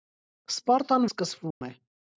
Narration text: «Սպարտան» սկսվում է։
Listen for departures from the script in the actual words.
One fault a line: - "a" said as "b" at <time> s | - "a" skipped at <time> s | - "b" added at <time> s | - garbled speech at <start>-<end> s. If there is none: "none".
none